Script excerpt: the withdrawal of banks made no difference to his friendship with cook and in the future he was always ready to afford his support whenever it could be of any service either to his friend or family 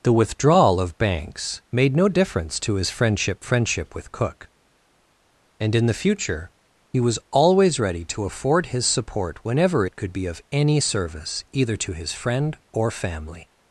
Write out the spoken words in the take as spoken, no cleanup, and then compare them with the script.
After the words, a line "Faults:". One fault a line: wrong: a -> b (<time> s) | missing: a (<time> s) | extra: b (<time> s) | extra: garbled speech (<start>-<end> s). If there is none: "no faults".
the withdrawal of banks made no difference to his friendship friendship with cook and in the future he was always ready to afford his support whenever it could be of any service either to his friend or family
Faults:
extra: friendship (3.4 s)